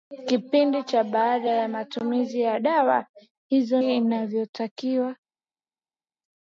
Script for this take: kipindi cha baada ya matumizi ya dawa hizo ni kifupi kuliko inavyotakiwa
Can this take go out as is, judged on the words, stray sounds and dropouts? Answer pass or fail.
fail